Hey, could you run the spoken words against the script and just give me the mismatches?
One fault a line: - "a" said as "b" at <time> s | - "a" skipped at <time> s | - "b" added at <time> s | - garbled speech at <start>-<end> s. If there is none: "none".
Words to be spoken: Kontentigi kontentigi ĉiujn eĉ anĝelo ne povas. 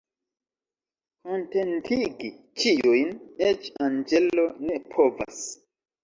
- "kontentigi" skipped at 2.3 s